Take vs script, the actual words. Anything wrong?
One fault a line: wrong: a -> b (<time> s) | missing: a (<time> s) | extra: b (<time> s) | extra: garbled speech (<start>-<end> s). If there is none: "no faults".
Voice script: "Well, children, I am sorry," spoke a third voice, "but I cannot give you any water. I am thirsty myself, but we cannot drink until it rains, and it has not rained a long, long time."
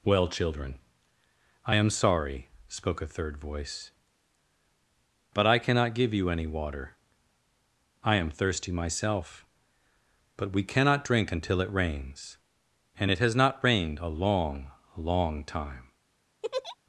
no faults